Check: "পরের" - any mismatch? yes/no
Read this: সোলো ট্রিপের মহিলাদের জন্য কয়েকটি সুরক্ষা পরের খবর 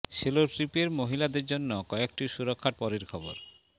no